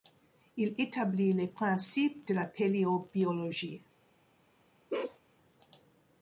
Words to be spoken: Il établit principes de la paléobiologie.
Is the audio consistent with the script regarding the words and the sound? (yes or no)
no